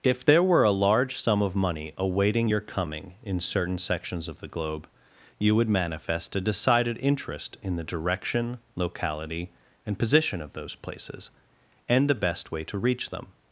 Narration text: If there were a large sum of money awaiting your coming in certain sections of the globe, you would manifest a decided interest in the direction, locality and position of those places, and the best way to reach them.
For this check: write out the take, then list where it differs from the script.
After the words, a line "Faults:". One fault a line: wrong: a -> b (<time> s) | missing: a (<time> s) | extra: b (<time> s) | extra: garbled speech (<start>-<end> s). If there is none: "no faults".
If there were a large sum of money awaiting your coming in certain sections of the globe, you would manifest a decided interest in the direction, locality and position of those places, and the best way to reach them.
Faults:
no faults